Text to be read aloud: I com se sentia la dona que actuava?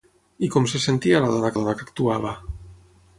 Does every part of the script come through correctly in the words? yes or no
no